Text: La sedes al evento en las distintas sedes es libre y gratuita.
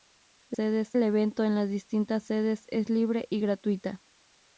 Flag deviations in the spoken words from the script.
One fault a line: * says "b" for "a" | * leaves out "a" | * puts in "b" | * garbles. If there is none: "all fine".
all fine